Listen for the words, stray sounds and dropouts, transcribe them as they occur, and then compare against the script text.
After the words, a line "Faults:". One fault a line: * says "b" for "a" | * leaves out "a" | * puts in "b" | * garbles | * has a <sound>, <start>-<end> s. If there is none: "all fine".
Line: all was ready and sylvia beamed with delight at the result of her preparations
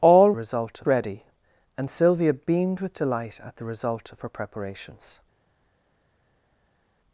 all result ready and sylvia beamed with delight at the result of her preparations
Faults:
* says "result" for "was"